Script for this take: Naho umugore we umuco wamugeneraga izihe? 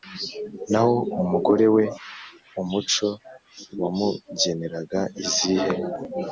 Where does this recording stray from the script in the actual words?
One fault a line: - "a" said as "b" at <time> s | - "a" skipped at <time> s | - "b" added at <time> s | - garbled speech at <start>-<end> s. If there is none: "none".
none